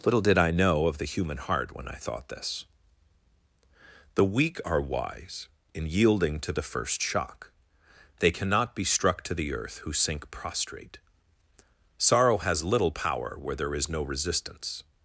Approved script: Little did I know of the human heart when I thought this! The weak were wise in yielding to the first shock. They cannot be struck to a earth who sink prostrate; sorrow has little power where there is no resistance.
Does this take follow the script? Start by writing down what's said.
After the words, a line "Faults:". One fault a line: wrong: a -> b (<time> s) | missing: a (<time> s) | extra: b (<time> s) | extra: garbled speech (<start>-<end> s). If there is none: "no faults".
Little did I know of the human heart when I thought this! The weak are wise in yielding to the first shock. They cannot be struck to the earth who sink prostrate; sorrow has little power where there is no resistance.
Faults:
wrong: were -> are (4.6 s)
wrong: a -> the (9.3 s)